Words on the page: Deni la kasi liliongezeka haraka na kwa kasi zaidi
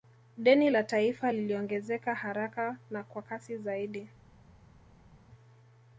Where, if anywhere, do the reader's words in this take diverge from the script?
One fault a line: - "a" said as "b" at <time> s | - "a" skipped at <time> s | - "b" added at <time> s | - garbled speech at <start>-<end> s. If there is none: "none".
- "kasi" said as "taifa" at 0.8 s